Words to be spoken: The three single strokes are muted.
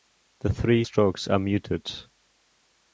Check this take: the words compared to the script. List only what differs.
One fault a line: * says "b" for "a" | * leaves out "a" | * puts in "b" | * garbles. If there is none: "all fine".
* leaves out "single"